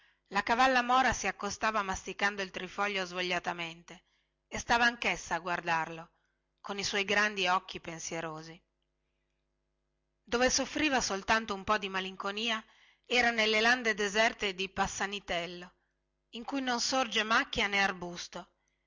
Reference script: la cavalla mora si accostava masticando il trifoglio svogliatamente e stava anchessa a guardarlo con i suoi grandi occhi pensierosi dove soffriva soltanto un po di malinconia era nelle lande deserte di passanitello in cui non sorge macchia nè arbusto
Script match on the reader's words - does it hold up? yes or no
yes